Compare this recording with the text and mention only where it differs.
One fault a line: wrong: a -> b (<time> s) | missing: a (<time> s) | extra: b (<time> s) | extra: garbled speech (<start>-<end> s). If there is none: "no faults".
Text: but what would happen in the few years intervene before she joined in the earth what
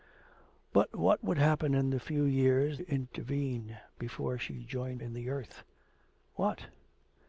no faults